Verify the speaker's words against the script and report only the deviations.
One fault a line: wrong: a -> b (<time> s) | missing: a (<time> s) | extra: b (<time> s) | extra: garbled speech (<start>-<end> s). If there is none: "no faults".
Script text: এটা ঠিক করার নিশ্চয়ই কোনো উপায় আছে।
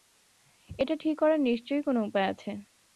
no faults